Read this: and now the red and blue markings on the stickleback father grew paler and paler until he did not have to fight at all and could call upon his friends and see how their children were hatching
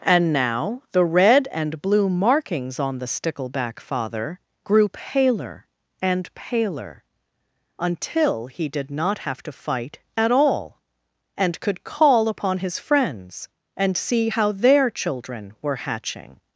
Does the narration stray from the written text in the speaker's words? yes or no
no